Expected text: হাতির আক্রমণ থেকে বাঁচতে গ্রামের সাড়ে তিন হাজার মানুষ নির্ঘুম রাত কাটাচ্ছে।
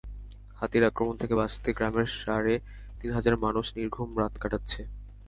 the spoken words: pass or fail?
pass